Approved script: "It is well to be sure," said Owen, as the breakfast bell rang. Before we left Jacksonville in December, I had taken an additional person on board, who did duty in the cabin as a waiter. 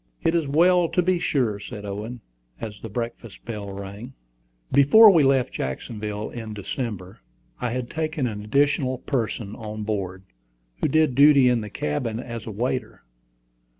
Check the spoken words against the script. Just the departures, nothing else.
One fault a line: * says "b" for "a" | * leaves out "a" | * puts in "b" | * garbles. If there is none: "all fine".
all fine